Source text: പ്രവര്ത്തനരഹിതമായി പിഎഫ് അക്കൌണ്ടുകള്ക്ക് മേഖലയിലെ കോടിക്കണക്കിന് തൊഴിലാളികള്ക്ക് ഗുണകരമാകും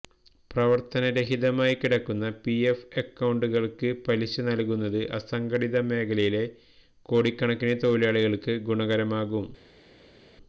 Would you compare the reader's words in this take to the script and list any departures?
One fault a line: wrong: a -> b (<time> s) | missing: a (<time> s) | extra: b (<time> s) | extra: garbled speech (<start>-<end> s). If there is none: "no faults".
extra: കിടക്കുന്ന (1.8 s)
extra: പലിശ നല്കുന്നത് അസംഘടിത (4.0 s)